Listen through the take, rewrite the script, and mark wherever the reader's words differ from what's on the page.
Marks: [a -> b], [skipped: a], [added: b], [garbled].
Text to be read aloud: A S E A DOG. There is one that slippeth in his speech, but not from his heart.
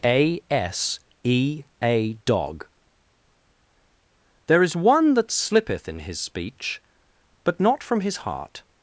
A S E A DOG. There is one that slippeth in his speech, but not from his heart.